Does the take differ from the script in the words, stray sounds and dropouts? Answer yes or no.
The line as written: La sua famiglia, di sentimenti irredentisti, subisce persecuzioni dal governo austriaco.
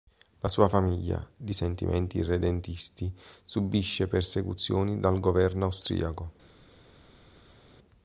no